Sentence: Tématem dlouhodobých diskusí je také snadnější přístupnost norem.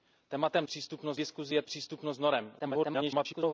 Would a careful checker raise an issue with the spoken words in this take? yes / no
yes